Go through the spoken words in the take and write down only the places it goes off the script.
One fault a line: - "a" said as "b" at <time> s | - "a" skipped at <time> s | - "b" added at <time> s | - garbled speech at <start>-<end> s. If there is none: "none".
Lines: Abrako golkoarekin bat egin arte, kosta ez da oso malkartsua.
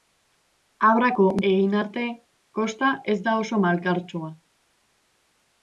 - "golkoarekin bat" skipped at 1.2 s